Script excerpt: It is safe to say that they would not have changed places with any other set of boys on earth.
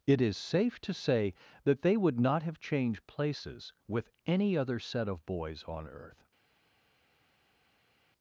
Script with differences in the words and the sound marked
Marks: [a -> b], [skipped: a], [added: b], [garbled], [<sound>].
It is safe to say that they would not have changed places with any other set of boys on earth.